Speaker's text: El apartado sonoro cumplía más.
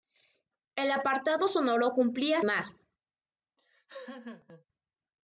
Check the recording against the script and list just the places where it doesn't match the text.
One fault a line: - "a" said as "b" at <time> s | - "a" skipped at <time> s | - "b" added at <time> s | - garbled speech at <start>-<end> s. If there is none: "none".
none